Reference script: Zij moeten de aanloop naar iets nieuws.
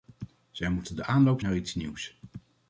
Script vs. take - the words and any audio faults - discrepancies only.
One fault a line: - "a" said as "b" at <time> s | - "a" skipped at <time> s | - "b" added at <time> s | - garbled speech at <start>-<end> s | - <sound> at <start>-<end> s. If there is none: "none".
none